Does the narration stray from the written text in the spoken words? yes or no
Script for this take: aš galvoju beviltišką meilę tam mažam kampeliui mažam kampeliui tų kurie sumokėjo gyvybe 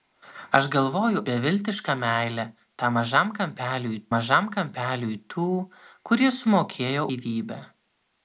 no